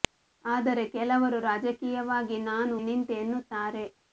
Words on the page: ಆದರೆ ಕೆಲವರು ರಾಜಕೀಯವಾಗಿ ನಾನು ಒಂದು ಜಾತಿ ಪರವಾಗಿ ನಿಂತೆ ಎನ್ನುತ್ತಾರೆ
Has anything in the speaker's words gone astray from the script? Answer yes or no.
yes